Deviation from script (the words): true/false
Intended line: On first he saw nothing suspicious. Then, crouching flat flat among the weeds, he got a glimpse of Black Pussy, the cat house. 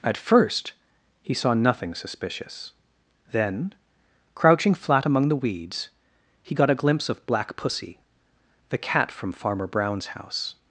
true